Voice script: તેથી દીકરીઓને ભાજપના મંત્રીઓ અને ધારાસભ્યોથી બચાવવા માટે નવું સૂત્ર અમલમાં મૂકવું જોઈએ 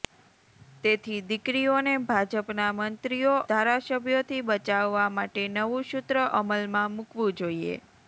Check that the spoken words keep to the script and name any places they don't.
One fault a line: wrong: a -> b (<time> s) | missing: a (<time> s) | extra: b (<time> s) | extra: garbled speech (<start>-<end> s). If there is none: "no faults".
missing: અને (3.4 s)